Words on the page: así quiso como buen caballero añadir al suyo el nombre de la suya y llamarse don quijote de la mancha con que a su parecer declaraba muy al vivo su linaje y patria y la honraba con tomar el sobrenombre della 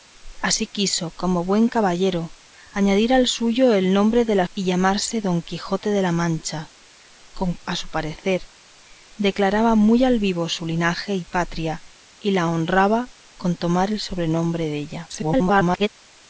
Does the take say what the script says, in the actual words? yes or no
no